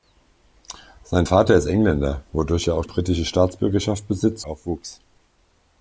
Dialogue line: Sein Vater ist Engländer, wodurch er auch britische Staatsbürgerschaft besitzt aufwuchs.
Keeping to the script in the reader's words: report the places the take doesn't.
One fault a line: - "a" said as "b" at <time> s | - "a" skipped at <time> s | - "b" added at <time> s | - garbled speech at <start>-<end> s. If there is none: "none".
none